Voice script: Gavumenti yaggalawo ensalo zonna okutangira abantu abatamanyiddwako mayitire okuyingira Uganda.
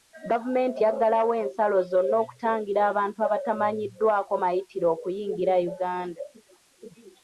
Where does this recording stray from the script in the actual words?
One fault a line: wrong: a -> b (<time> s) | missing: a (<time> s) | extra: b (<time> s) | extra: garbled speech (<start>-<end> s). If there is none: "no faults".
no faults